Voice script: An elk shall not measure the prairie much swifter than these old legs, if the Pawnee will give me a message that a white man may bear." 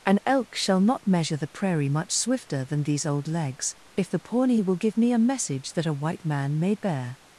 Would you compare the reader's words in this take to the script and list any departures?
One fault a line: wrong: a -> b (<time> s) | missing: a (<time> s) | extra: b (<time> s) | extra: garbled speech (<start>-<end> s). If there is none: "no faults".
no faults